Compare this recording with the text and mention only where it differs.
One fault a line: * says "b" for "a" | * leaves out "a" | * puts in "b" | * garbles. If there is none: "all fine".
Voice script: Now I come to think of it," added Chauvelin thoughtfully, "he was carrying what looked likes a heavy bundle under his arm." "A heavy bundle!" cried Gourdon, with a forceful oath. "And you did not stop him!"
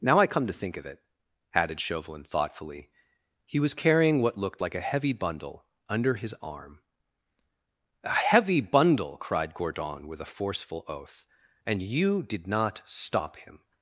* says "like" for "likes"